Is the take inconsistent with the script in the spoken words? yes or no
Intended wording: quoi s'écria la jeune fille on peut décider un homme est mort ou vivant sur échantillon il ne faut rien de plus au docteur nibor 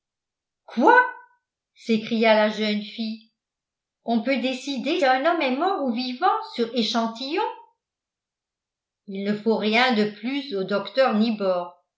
no